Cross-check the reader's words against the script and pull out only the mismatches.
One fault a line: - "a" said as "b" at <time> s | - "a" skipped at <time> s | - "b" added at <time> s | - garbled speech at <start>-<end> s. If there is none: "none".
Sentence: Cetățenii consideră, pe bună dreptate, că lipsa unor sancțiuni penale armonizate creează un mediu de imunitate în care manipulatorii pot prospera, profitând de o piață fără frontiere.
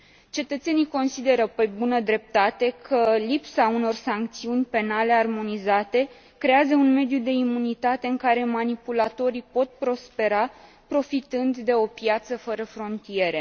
none